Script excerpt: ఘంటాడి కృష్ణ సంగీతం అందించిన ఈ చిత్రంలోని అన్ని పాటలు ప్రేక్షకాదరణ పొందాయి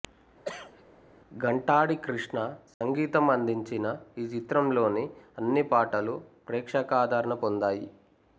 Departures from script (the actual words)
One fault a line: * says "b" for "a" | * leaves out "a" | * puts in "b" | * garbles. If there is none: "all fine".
all fine